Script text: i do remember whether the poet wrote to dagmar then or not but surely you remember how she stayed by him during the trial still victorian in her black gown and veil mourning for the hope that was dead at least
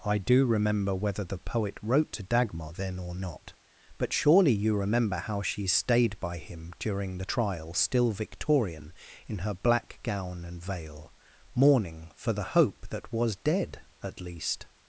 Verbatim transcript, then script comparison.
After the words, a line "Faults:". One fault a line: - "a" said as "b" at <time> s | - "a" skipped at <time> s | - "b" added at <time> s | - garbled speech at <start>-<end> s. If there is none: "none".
i do remember whether the poet wrote to dagmar then or not but surely you remember how she stayed by him during the trial still victorian in her black gown and veil mourning for the hope that was dead at least
Faults:
none